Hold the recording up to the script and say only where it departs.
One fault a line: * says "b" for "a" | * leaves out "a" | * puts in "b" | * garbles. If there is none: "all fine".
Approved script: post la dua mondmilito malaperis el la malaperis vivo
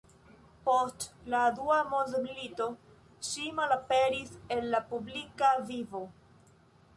* puts in "ŝi"
* says "publika" for "malaperis"